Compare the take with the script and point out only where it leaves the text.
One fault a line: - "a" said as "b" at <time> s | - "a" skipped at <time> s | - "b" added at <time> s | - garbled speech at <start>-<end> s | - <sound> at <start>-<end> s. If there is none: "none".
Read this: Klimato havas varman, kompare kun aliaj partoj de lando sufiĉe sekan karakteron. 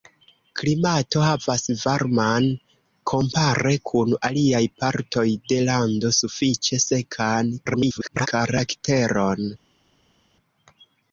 - garbled speech at 7.7-8.3 s